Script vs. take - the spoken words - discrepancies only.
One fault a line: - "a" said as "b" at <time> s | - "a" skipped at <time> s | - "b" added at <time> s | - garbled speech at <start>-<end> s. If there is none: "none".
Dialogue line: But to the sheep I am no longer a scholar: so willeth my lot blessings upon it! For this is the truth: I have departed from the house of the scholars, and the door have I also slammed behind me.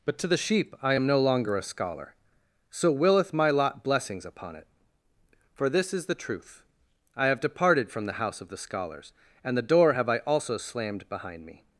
none